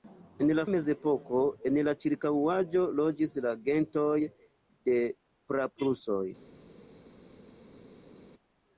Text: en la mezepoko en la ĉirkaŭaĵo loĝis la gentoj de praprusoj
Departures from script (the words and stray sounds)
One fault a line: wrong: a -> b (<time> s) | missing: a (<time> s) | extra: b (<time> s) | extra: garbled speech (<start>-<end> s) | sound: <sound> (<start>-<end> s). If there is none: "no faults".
no faults